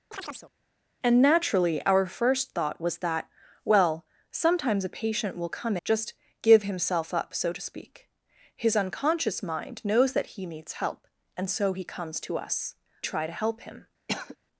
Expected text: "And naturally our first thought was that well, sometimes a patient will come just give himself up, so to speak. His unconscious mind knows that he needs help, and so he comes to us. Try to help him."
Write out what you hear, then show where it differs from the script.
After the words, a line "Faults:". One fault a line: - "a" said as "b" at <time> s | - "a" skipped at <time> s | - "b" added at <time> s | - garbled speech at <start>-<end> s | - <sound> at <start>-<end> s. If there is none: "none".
"And naturally our first thought was that well, sometimes a patient will come just give himself up, so to speak. His unconscious mind knows that he needs help, and so he comes to us. Try to help him."
Faults:
- chirp at 0.1-0.5 s
- cough at 14.1-14.4 s